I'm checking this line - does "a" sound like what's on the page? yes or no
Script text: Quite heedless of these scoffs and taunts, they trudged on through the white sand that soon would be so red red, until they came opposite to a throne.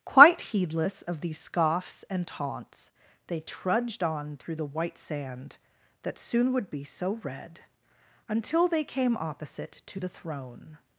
no